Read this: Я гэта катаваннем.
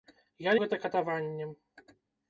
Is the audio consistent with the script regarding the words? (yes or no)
yes